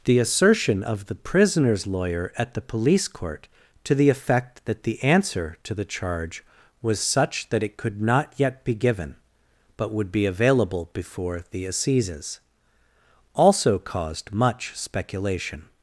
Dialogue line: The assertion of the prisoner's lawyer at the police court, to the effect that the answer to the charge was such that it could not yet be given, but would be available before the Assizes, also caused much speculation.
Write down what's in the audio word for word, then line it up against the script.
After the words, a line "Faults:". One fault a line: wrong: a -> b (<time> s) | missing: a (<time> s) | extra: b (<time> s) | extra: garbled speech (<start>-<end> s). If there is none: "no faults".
The assertion of the prisoner's lawyer at the police court, to the effect that the answer to the charge was such that it could not yet be given, but would be available before the Assizes, also caused much speculation.
Faults:
no faults